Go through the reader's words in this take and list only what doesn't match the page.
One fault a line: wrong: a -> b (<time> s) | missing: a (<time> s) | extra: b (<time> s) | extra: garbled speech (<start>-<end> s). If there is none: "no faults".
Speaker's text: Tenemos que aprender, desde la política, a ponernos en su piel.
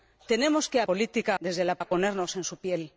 wrong: aprender -> política (0.9 s)
missing: política (1.7 s)